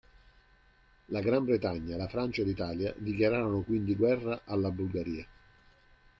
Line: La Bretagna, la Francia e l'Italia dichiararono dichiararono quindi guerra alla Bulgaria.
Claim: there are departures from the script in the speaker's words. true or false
true